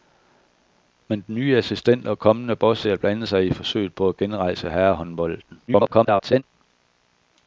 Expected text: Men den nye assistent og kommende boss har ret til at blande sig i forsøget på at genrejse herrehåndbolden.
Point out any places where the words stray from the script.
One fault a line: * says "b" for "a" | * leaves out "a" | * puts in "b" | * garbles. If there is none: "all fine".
* leaves out "har ret til"
* garbles